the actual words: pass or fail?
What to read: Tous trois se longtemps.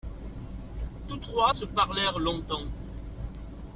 fail